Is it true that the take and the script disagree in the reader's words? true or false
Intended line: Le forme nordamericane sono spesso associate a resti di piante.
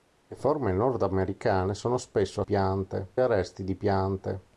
true